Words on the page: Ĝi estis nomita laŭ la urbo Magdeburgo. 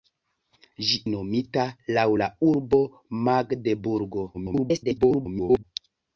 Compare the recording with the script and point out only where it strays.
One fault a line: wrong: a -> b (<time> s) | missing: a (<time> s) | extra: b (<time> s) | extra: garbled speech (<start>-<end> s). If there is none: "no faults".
missing: estis (0.9 s)
extra: garbled speech (4.3-5.6 s)